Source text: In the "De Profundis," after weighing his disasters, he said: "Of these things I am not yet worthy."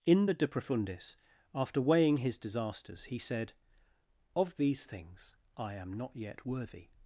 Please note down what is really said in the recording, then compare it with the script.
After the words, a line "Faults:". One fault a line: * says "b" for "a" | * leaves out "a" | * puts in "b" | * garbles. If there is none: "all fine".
In the "De Profundis," after weighing his disasters, he said: "Of these things I am not yet worthy."
Faults:
all fine